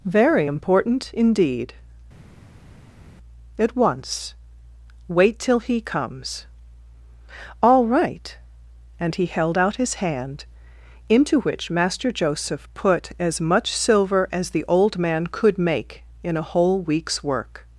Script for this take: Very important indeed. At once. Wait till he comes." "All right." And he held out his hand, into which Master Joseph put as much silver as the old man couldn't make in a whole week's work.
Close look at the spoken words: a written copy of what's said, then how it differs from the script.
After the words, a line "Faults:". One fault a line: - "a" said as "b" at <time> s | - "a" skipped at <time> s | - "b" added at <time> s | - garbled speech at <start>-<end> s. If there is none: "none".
Very important indeed. At once. Wait till he comes." "All right." And he held out his hand, into which Master Joseph put as much silver as the old man could make in a whole week's work.
Faults:
- "couldn't" said as "could" at 15.3 s